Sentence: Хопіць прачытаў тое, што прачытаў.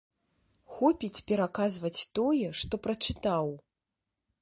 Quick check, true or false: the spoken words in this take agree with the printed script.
false